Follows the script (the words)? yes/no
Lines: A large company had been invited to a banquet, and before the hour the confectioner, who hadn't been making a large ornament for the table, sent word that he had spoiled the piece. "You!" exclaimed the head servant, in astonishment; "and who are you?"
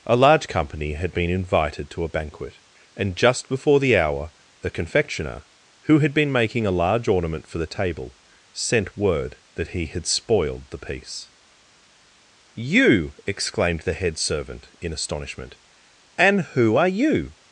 no